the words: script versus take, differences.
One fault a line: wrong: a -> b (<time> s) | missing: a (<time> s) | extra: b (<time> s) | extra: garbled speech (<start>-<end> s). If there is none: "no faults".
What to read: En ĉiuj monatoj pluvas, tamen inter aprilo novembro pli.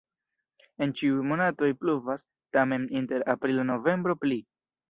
no faults